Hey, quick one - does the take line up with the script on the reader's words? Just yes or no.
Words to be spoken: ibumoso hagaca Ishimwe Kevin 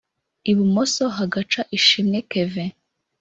yes